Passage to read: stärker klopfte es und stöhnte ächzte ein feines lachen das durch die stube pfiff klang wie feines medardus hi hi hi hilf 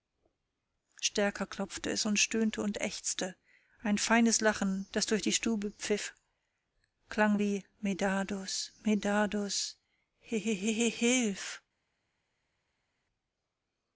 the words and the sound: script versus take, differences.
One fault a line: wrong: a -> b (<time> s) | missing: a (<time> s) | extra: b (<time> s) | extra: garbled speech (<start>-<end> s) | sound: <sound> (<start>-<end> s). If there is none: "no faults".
extra: und (2.6 s)
wrong: feines -> medardus (7.8 s)